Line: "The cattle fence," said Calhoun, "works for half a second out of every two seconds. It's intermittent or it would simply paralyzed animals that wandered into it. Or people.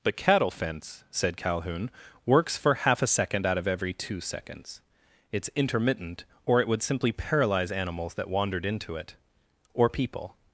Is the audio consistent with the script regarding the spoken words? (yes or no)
no